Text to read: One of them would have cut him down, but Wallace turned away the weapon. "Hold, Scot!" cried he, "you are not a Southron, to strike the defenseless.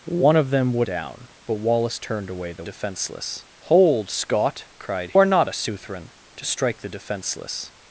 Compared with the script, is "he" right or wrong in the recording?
wrong